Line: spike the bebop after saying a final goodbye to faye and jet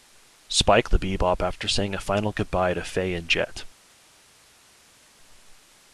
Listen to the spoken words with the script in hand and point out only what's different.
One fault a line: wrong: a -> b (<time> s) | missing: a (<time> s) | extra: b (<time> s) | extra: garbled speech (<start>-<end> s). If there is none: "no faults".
no faults